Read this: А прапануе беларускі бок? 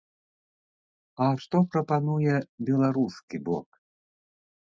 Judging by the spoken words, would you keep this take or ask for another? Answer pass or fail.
fail